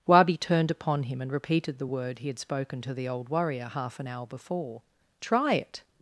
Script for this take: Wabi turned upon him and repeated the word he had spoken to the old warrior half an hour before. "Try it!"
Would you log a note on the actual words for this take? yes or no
no